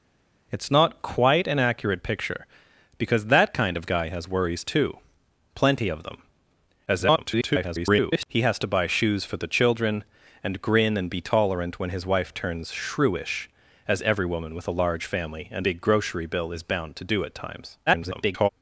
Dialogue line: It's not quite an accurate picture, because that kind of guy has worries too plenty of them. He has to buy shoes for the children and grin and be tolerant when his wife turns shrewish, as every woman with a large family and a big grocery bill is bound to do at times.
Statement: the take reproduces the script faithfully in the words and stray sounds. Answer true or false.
false